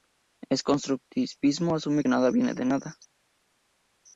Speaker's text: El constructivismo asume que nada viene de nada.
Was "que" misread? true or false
true